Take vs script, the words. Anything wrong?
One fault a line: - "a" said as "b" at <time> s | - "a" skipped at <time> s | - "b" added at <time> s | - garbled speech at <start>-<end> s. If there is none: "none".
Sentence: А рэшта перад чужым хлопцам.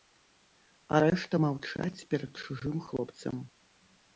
- "маўчаць" added at 1.5 s